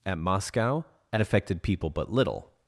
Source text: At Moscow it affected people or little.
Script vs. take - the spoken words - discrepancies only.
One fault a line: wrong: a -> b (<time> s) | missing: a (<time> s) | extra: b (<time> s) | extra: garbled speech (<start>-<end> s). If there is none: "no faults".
wrong: or -> but (1.9 s)